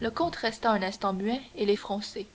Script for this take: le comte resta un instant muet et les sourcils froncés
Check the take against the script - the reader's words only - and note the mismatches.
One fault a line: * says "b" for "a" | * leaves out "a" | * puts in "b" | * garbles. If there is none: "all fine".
* leaves out "sourcils"